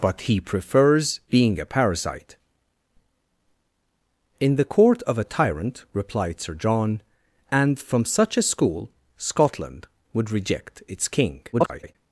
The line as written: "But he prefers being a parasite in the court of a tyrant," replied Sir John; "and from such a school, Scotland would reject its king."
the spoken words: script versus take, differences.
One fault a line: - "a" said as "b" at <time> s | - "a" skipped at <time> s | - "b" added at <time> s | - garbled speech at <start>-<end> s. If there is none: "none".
- garbled speech at 11.5-12.0 s